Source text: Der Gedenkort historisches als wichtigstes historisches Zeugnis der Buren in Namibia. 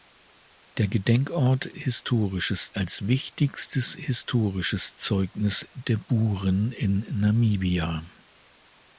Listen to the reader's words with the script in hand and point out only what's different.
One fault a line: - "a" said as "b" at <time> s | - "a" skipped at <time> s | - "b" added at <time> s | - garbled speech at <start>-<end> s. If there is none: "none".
none